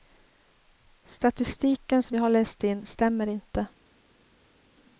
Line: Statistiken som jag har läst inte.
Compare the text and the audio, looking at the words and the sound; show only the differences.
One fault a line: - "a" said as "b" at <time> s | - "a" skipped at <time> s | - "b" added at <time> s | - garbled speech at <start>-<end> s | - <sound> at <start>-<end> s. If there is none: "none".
- "in stämmer" added at 2.6 s